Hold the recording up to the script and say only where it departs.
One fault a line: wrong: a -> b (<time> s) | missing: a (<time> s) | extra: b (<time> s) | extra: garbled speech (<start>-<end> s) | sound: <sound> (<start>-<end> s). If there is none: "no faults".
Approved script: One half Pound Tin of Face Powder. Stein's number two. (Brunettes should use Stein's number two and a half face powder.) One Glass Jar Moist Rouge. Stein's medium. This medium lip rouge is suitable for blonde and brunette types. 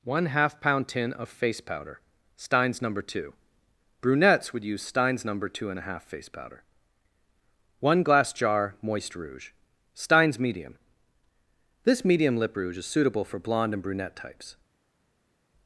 wrong: should -> would (4.5 s)